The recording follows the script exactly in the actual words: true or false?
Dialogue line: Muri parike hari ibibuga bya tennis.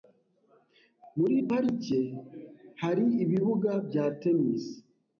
true